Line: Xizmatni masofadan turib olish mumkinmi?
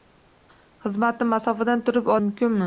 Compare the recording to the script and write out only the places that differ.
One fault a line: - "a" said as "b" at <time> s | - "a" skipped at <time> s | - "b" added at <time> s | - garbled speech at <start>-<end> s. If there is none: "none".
- "olish" skipped at 2.1 s